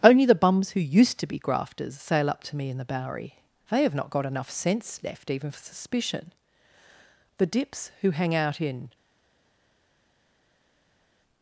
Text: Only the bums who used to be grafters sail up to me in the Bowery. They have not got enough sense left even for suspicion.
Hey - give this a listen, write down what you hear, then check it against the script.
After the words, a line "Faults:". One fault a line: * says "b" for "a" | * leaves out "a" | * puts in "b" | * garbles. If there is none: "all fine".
Only the bums who used to be grafters sail up to me in the Bowery. They have not got enough sense left even for suspicion. The dips who hang out in
Faults:
* puts in "The dips who hang out in"